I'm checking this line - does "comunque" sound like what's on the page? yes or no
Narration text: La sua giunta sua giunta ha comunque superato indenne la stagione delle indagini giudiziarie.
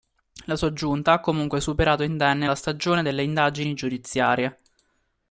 yes